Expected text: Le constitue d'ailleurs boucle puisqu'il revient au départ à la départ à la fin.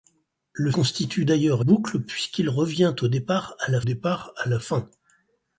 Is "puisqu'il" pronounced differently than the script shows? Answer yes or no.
no